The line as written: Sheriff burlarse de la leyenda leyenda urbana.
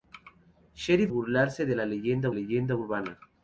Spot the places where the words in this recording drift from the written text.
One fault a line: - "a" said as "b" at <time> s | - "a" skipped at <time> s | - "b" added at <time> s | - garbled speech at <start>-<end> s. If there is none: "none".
none